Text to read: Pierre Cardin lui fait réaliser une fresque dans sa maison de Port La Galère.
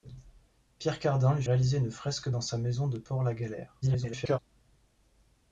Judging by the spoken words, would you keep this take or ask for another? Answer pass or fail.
fail